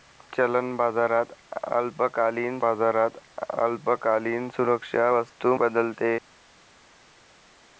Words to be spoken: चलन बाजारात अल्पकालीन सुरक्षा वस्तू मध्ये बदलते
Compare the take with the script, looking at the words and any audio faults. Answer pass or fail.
fail